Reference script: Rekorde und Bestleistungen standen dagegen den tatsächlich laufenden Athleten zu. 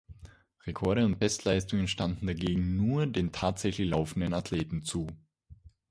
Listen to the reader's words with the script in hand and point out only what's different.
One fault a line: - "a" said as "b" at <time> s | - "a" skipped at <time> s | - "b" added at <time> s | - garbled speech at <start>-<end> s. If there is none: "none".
- "nur" added at 2.8 s